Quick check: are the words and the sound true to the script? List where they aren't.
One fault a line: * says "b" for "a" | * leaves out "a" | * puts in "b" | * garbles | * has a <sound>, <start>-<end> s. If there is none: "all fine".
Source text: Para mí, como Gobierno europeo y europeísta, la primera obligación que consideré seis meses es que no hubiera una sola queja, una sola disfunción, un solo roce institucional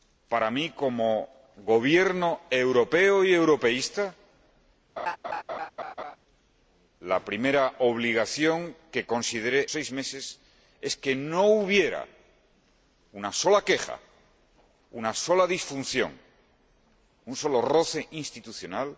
* has a laugh, 5.0-6.2 s